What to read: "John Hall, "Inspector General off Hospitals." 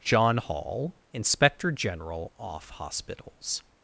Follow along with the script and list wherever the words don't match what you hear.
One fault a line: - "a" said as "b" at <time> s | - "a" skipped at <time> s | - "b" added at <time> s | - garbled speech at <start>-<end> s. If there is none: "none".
none